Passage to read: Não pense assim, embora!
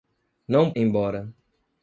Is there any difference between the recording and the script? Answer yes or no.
yes